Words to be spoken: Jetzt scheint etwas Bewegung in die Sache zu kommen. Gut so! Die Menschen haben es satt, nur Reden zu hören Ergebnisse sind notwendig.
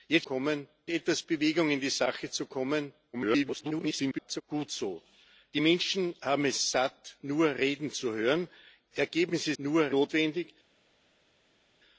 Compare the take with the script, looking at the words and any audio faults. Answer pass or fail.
fail